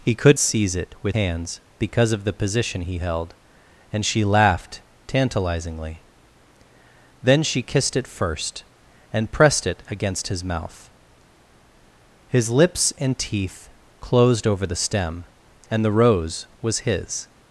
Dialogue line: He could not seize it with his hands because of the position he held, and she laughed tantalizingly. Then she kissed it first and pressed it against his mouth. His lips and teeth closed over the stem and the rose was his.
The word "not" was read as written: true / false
false